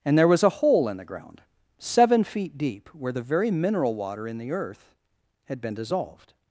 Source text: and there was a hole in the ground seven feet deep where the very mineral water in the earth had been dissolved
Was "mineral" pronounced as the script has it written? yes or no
yes